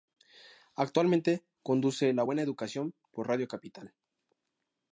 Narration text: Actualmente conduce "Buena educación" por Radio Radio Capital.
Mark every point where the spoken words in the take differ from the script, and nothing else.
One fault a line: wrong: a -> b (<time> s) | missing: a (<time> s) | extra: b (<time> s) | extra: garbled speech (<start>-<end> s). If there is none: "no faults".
extra: La (2.1 s)
missing: Radio (3.5 s)